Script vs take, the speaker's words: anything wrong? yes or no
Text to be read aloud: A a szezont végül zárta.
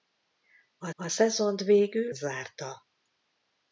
no